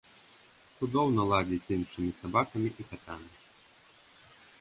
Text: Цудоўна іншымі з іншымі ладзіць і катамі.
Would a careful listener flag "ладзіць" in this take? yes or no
yes